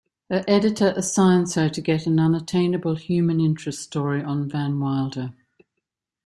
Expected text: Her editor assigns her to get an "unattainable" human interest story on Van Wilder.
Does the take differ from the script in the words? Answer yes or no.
no